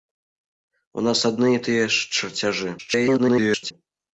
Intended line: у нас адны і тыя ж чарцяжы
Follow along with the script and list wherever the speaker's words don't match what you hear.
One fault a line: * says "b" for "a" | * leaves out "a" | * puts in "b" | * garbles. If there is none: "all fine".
* garbles